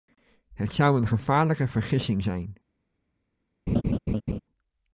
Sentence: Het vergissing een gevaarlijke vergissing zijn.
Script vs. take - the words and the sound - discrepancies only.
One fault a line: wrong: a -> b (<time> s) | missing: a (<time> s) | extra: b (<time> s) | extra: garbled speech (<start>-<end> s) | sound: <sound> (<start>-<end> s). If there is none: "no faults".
wrong: vergissing -> zou (0.7 s)
sound: laugh (3.7-4.4 s)